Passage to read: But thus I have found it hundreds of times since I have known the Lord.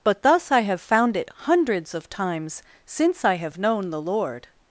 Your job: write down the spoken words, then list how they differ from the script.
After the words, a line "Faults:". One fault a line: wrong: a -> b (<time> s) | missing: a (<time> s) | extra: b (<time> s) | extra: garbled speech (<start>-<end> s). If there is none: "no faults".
But thus I have found it hundreds of times since I have known the Lord.
Faults:
no faults